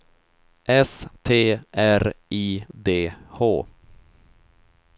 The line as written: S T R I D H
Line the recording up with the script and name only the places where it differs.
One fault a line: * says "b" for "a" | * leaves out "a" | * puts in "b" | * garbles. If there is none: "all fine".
all fine